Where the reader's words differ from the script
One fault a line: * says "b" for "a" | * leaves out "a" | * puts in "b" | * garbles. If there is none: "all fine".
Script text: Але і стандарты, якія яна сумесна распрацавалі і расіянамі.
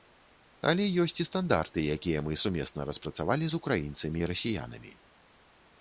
* puts in "ёсць"
* says "мы" for "яна"
* puts in "з украінцамі"